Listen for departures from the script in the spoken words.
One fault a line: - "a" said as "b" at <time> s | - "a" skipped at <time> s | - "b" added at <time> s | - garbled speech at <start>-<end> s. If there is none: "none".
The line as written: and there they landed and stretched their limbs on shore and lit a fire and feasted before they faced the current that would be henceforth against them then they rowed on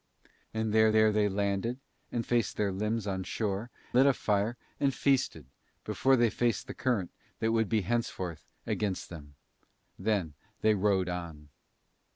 - "there" added at 0.9 s
- "stretched" said as "faced" at 2.2 s
- "and" skipped at 3.7 s